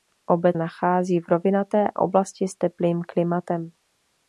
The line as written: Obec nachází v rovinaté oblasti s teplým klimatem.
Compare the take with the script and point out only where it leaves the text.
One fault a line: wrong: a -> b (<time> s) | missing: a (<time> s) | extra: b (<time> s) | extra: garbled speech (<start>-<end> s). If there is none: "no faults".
no faults